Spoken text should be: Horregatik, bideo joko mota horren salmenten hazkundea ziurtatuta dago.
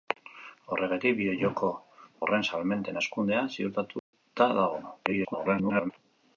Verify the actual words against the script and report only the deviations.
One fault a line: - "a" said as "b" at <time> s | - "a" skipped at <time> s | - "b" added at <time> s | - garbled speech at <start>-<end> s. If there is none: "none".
- "mota" skipped at 1.7 s
- garbled speech at 5.1-5.9 s